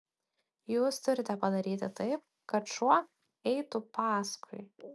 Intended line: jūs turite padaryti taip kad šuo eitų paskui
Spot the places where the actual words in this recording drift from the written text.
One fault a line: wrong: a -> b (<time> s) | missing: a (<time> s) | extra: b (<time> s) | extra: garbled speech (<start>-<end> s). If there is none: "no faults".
no faults